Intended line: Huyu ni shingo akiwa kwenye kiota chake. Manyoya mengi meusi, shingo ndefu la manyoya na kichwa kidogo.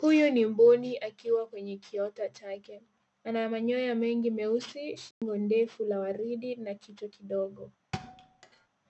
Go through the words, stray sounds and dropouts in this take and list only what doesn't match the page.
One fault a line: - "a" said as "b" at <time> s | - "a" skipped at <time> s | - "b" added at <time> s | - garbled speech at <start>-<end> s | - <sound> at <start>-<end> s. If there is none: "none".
- "shingo" said as "mbuni" at 0.5 s
- "Ana" added at 3.2 s
- dropout at 5.1-5.2 s
- "manyoya" said as "waridi" at 6.0 s
- thud at 7.9-8.7 s